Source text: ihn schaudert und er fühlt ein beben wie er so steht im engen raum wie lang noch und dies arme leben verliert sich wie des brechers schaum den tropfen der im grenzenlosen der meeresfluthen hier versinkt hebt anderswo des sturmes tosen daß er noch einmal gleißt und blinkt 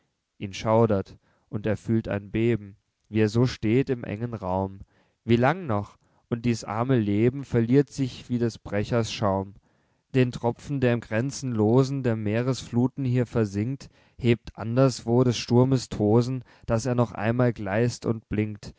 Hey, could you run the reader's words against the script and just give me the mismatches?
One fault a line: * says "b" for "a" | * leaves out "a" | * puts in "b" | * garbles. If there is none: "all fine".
all fine